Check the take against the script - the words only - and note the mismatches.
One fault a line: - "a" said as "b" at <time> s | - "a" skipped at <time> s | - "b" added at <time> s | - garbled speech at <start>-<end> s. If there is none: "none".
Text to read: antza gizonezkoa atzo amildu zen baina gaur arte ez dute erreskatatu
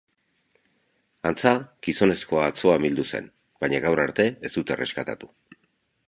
none